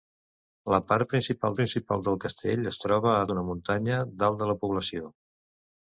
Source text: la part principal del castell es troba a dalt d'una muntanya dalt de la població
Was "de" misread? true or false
false